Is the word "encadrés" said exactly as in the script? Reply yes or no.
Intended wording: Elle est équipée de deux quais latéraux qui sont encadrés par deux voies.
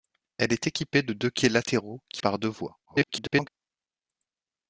no